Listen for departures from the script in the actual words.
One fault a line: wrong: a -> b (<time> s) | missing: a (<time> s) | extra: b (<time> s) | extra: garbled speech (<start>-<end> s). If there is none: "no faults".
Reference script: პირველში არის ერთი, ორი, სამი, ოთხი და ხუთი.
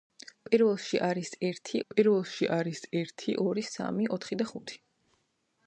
extra: პირველში არის ერთი (1.9 s)